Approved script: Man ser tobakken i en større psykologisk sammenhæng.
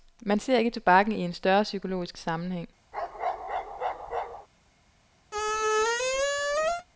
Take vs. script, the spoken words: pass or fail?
fail